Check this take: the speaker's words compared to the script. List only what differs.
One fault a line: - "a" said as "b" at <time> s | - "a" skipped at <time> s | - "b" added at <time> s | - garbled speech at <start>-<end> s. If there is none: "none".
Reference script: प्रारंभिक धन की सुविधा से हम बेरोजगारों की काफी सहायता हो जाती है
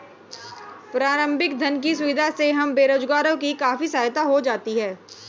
none